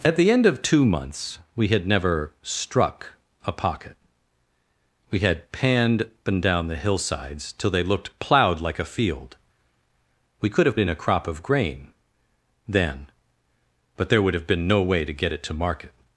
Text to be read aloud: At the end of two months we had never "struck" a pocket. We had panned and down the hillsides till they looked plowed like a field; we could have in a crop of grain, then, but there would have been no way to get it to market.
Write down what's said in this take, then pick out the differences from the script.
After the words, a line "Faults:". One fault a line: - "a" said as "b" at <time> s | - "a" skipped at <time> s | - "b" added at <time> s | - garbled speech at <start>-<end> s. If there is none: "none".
At the end of two months we had never "struck" a pocket. We had panned and down the hillsides till they looked plowed like a field; we could have in a crop of grain, then, but there would have been no way to get it to market.
Faults:
none